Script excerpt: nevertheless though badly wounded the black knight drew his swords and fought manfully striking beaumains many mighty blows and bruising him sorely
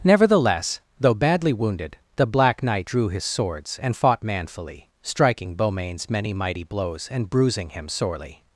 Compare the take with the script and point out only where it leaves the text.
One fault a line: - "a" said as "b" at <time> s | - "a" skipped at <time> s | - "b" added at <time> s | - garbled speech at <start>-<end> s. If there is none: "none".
none